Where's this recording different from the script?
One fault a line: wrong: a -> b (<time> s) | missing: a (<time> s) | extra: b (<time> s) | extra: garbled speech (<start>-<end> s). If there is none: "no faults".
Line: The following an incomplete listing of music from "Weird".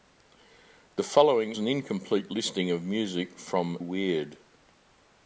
no faults